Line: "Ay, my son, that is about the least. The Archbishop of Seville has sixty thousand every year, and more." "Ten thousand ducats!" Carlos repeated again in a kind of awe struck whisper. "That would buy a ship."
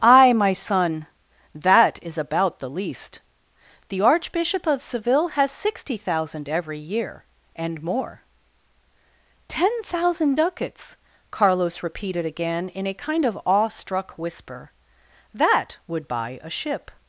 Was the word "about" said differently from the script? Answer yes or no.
no